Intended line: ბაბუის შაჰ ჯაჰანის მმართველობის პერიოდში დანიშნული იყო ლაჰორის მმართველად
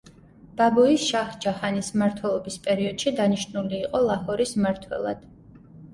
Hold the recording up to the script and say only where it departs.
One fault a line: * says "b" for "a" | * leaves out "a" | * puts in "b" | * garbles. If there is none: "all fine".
all fine